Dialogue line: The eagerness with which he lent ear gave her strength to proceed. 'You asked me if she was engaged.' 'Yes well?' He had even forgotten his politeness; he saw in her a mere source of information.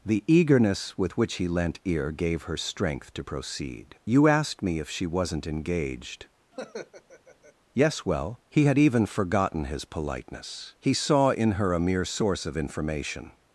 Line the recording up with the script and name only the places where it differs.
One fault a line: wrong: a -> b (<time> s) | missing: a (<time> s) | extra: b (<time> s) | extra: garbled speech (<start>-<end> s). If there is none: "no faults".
wrong: was -> wasn't (5.0 s)